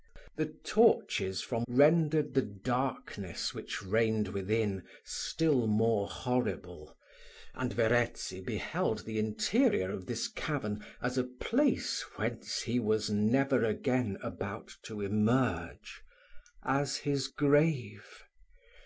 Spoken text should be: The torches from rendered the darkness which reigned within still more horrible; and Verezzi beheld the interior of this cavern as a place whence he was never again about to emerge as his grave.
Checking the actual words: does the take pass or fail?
pass